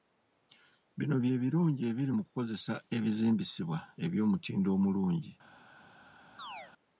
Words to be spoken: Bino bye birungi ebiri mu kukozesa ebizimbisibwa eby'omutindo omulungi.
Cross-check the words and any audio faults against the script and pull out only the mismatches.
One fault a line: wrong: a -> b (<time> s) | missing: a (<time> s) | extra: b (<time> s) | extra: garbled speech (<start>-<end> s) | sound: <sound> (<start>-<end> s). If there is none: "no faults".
sound: chirp (6.4-6.7 s)